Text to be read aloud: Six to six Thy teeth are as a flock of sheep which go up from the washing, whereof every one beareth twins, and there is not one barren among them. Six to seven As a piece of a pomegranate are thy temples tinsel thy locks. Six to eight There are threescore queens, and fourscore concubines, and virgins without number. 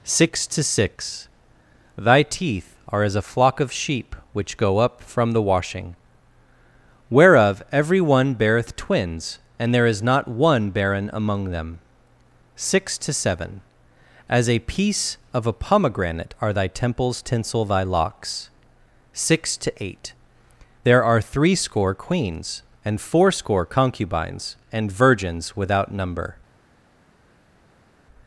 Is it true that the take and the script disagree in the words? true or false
false